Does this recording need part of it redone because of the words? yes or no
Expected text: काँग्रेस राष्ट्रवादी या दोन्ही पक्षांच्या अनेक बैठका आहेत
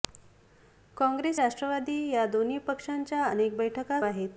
no